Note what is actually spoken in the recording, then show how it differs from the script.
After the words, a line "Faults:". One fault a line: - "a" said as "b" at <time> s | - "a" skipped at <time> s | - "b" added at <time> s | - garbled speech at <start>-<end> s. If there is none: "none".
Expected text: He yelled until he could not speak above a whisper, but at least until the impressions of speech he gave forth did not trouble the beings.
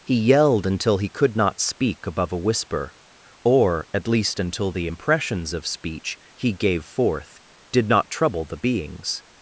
He yelled until he could not speak above a whisper, or at least until the impressions of speech he gave forth did not trouble the beings.
Faults:
- "but" said as "or" at 3.4 s